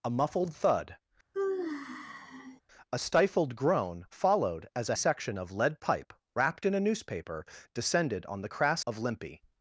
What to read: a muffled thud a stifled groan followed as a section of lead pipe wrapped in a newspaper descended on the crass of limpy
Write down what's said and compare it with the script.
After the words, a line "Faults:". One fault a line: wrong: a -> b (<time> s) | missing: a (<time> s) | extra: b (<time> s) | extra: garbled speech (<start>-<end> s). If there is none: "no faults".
a muffled thud a stifled groan followed as a section of lead pipe wrapped in a newspaper descended on the crass of limpy
Faults:
no faults